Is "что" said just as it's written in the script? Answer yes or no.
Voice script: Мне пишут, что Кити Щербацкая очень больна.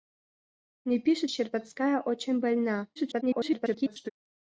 no